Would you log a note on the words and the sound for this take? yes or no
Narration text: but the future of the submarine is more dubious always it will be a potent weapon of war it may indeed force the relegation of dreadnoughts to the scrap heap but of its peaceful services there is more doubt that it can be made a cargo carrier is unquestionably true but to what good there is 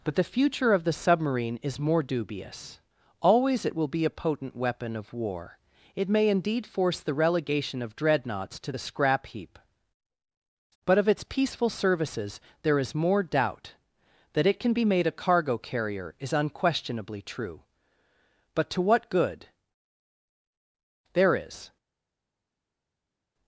no